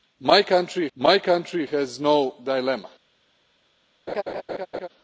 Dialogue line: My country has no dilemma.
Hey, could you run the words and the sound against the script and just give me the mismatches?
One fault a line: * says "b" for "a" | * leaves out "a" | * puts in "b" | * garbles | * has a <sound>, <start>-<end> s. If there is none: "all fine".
* puts in "my country"
* has a laugh, 4.1-4.9 s